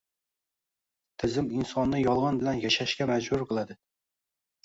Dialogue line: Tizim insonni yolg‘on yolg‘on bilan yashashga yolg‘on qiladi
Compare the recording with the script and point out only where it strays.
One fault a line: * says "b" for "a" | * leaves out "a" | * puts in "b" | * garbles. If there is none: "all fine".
* leaves out "yolg‘on"
* says "majbur" for "yolg‘on"